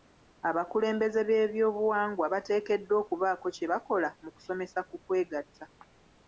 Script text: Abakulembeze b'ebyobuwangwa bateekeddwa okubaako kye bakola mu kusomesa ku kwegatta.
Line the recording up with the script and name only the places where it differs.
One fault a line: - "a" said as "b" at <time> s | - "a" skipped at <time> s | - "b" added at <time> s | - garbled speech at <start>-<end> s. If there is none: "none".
none